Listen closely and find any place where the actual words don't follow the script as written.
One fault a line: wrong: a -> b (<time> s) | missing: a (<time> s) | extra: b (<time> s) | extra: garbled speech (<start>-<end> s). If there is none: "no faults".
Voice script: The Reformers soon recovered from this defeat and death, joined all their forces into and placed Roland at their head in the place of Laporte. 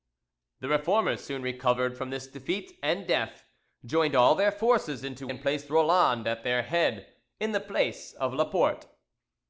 no faults